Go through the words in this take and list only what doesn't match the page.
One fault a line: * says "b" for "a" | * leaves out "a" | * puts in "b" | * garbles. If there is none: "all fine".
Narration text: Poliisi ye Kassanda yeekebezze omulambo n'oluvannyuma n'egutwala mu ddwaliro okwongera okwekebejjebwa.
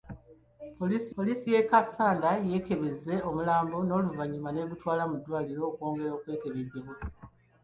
* puts in "poliisi"